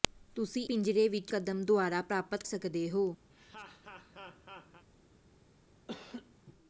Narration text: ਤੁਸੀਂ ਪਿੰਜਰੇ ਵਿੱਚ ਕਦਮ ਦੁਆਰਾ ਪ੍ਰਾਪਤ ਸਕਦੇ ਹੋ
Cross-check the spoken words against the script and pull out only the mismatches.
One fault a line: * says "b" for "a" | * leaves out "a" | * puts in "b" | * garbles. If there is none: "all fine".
all fine